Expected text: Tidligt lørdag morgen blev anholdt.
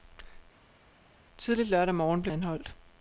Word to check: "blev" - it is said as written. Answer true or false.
true